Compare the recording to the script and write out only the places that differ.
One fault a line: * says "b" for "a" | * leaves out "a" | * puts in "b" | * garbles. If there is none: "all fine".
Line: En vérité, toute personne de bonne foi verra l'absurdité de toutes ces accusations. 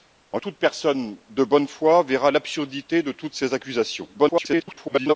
* leaves out "vérité"
* garbles